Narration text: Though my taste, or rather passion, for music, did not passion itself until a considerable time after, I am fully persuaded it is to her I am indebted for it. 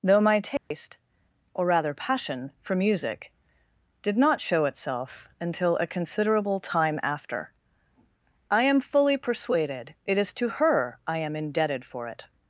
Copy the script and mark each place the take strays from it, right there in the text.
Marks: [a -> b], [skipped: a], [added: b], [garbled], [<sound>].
Though my taste, [dropout] or rather passion, for music, did not [passion -> show] itself until a considerable time after, I am fully persuaded it is to her I am indebted for it.